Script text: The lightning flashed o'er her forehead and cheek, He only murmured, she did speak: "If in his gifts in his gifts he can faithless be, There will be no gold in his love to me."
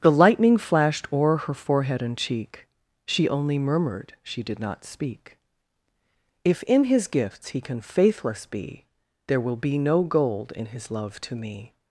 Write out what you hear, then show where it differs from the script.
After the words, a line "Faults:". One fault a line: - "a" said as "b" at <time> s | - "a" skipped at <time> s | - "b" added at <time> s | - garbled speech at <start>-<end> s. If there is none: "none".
The lightning flashed o'er her forehead and cheek, She only murmured, she did not speak: "If in his gifts he can faithless be, There will be no gold in his love to me."
Faults:
- "He" said as "She" at 3.0 s
- "not" added at 4.6 s
- "in his gifts" skipped at 7.5 s